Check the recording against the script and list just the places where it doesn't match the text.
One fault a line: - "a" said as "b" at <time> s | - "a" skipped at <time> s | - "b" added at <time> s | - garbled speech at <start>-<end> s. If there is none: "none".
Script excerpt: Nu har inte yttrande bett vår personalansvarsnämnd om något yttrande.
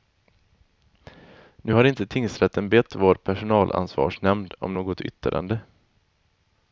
- "yttrande" said as "tingsrätten" at 2.1 s